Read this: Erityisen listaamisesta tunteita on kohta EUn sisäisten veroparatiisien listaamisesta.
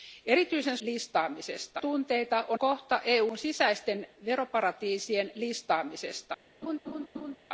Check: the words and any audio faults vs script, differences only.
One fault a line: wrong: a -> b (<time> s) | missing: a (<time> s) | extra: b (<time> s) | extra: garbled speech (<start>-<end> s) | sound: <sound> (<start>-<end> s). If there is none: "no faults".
sound: laugh (6.6-7.4 s)